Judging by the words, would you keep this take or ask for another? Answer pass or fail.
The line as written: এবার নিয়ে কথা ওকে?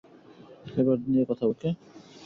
pass